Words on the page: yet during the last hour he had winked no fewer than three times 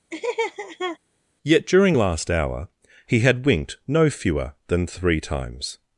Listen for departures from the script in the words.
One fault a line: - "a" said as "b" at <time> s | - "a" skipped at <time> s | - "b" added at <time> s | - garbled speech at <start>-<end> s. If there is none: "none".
- "the" skipped at 2.0 s